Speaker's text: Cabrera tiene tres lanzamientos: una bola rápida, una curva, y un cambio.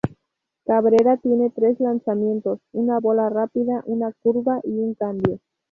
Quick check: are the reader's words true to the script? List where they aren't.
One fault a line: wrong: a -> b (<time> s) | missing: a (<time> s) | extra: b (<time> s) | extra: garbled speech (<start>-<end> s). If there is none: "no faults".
no faults